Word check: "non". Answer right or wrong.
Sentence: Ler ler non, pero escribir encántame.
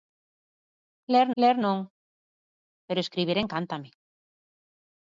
right